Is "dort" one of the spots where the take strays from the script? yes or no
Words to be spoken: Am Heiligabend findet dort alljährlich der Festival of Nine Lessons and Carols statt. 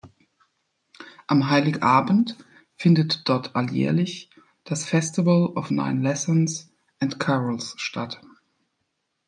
no